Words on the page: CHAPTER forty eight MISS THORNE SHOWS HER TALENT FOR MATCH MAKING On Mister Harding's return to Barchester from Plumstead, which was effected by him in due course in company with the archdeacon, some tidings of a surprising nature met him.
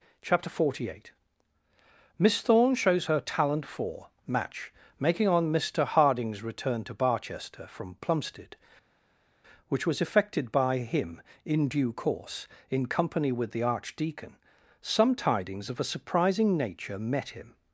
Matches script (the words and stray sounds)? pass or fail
pass